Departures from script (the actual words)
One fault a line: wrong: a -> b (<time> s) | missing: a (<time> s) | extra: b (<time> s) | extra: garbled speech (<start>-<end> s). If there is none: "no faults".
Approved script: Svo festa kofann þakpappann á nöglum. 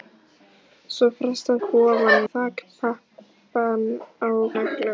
no faults